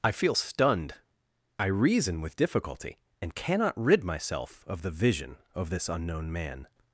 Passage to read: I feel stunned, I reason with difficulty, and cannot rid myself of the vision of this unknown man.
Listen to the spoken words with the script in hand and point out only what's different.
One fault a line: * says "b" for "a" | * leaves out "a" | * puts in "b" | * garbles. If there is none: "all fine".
all fine